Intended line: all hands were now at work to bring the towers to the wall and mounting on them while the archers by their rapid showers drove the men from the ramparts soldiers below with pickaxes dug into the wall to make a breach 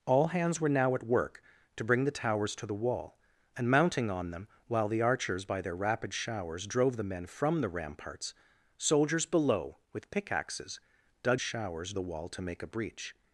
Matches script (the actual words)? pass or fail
fail